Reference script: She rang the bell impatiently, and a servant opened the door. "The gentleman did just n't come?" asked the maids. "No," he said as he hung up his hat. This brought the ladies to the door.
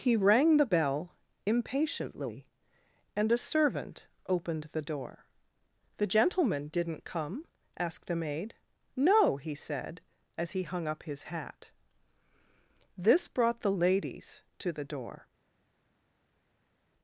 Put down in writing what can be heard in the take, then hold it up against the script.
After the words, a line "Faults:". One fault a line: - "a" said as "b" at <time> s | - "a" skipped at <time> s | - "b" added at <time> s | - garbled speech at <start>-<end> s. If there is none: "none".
He rang the bell impatiently, and a servant opened the door. "The gentleman did n't come?" asked the maid. "No," he said as he hung up his hat. This brought the ladies to the door.
Faults:
- "She" said as "He" at 0.0 s
- "just" skipped at 6.9 s
- "maids" said as "maid" at 8.2 s